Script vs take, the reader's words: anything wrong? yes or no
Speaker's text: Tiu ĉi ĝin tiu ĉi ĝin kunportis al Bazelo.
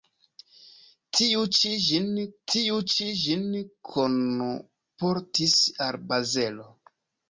no